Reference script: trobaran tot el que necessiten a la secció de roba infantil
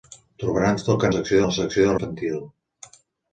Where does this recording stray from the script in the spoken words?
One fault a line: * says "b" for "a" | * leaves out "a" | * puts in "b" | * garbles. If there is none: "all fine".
* says "secció" for "necessiten"
* leaves out "roba"